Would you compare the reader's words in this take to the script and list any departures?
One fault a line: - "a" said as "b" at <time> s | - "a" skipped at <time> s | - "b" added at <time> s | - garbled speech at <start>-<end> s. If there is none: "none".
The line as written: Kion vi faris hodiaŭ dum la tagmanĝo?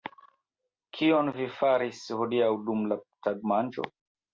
none